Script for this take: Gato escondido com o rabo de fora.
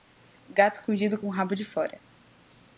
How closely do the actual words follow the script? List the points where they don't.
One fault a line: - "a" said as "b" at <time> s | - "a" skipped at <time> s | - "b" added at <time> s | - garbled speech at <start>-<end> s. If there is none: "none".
none